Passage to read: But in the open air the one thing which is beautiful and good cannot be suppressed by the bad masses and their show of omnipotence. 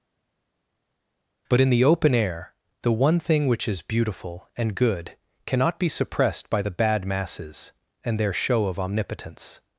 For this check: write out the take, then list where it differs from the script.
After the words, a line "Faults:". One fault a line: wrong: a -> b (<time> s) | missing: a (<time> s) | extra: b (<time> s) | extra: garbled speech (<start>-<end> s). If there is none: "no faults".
But in the open air the one thing which is beautiful and good cannot be suppressed by the bad masses and their show of omnipotence.
Faults:
no faults